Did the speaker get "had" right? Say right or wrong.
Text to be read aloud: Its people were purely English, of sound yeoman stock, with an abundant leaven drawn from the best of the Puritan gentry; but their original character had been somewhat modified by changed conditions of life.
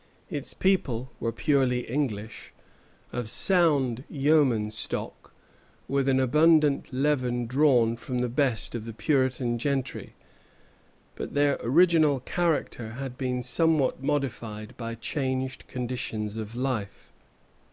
right